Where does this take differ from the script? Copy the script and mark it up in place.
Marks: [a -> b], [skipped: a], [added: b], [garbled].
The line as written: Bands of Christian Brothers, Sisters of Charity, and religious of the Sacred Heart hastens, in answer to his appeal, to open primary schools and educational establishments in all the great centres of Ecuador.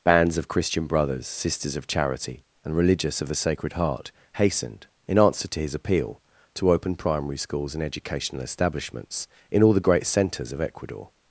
Bands of Christian Brothers, Sisters of Charity, and religious of the Sacred Heart [hastens, -> hastened] in answer to his appeal, to open primary schools and educational establishments in all the great centres of Ecuador.